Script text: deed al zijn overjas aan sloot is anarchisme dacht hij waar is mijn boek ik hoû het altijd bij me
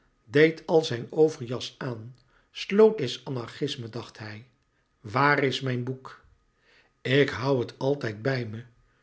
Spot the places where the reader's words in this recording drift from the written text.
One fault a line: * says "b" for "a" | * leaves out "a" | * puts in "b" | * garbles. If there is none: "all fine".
all fine